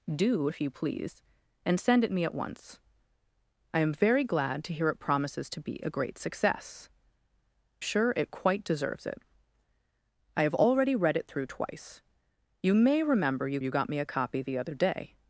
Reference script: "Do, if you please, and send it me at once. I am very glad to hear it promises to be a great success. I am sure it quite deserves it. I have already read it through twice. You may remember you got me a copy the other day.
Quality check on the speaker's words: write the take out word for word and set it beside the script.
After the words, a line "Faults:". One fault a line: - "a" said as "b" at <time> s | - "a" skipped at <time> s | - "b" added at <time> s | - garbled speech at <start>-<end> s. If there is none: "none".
"Do, if you please, and send it me at once. I am very glad to hear it promises to be a great success. sure it quite deserves it. I have already read it through twice. You may remember you you got me a copy the other day.
Faults:
- "I am" skipped at 6.9 s
- "you" added at 13.6 s